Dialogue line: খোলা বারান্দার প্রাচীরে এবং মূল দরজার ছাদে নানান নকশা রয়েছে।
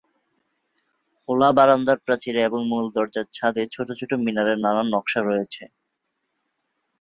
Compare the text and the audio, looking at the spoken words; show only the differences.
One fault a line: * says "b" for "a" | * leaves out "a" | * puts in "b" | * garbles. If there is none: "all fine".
* puts in "ছোট ছোট মিনারের"